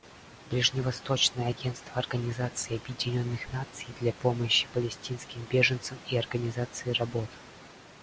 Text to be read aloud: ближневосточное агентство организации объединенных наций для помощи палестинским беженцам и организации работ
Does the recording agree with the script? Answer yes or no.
yes